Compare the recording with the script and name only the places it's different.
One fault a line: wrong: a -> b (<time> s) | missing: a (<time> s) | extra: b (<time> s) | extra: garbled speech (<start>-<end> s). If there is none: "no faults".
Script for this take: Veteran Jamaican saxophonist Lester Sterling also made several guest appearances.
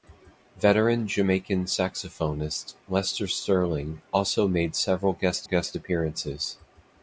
extra: guest (5.4 s)